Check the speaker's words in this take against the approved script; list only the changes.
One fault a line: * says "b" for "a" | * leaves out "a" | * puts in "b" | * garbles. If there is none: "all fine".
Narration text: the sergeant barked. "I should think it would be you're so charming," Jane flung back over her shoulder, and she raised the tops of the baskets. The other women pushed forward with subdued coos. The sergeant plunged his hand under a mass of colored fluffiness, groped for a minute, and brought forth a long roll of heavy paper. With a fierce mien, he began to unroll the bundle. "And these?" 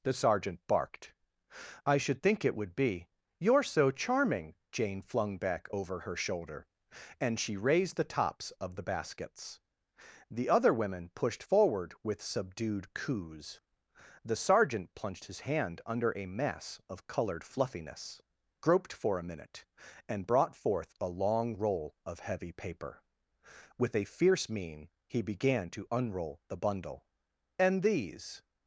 all fine